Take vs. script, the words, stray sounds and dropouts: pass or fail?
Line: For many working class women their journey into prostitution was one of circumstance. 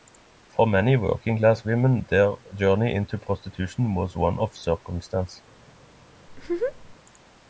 fail